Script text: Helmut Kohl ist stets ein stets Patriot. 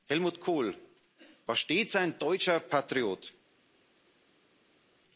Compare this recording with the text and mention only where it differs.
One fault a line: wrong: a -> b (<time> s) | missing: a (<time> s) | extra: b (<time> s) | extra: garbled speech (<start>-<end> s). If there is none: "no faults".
wrong: ist -> war (1.4 s)
wrong: stets -> deutscher (2.2 s)